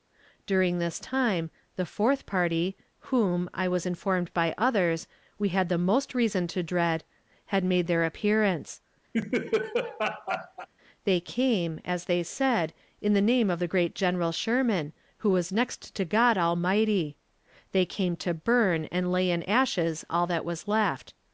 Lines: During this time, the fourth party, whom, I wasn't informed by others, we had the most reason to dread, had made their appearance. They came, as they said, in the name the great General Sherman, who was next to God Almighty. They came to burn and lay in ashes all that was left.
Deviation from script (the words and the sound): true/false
true